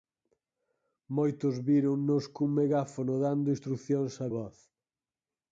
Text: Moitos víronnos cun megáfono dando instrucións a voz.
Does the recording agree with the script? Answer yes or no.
yes